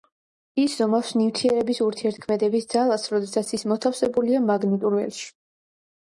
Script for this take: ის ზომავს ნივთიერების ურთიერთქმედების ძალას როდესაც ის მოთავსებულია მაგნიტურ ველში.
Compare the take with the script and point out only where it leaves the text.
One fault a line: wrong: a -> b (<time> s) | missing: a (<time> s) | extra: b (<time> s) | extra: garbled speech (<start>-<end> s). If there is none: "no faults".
no faults